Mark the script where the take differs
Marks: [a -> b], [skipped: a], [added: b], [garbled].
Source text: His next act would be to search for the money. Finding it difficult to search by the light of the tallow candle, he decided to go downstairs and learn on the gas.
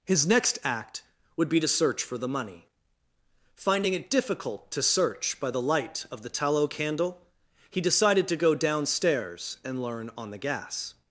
His next act would be to search for the money. Finding it difficult to search by the light of the tallow candle, he decided to go downstairs and learn on the gas.